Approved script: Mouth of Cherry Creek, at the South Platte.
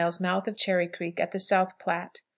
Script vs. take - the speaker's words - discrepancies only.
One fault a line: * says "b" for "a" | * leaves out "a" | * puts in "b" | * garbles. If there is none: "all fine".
all fine